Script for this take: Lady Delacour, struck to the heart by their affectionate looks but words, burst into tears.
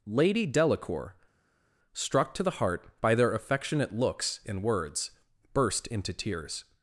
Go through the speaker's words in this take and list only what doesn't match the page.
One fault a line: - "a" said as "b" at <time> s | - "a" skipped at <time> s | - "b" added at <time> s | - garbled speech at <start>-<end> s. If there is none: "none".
- "but" said as "and" at 4.5 s